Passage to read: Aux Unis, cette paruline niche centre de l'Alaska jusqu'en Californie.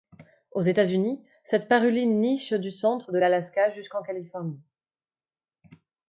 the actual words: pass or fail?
fail